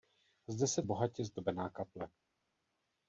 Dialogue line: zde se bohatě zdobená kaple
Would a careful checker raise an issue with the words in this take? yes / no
no